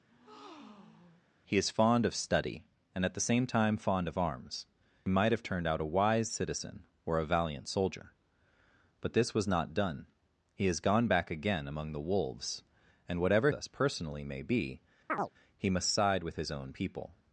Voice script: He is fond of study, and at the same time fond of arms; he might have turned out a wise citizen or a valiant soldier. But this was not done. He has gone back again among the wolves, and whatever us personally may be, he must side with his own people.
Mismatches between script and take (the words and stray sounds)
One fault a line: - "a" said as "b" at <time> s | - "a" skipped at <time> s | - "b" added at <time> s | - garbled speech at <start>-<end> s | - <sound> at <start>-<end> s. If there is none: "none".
- breath at 0.1-1.3 s
- chirp at 15.1-15.3 s